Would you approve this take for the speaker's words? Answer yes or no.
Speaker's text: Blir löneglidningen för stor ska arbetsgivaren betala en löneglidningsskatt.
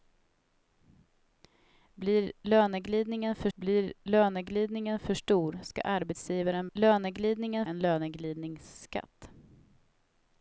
no